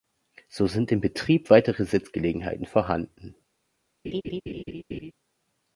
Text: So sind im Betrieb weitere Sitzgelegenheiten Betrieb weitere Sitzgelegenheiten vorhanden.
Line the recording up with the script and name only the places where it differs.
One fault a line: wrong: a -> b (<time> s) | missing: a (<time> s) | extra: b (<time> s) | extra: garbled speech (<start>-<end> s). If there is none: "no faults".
missing: Betrieb weitere Sitzgelegenheiten (2.7 s)